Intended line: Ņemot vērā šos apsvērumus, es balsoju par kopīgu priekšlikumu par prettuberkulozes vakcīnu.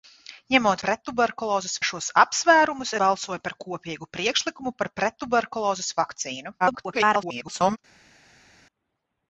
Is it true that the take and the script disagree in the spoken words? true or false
true